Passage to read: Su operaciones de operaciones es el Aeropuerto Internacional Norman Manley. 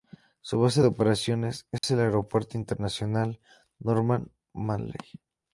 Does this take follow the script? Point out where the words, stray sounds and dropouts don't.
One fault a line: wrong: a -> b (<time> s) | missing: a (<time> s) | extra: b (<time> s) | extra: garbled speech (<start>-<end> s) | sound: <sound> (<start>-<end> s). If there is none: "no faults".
wrong: operaciones -> base (0.6 s)
sound: dropout (1.8-1.8 s)